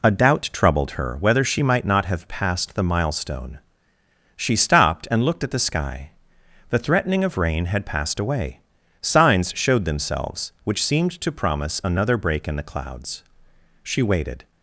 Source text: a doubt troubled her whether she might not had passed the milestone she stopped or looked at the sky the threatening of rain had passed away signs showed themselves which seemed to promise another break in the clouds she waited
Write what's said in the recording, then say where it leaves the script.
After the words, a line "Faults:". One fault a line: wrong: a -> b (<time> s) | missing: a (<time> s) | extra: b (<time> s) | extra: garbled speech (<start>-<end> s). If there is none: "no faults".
a doubt troubled her whether she might not have passed the milestone she stopped and looked at the sky the threatening of rain had passed away signs showed themselves which seemed to promise another break in the clouds she waited
Faults:
wrong: had -> have (2.0 s)
wrong: or -> and (5.1 s)